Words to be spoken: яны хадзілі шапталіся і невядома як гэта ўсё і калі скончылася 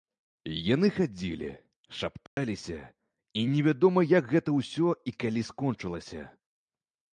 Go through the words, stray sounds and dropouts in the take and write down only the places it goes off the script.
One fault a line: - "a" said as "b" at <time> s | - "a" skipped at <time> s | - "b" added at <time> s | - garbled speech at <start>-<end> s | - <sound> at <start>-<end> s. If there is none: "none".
- dropout at 2.3-2.4 s